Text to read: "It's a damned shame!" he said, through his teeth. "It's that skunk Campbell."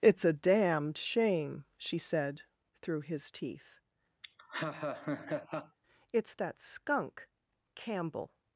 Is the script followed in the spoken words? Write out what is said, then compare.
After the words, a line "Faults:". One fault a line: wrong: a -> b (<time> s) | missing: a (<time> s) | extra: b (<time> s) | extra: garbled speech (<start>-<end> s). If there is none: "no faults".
"It's a damned shame!" she said, through his teeth. "It's that skunk Campbell."
Faults:
wrong: he -> she (1.8 s)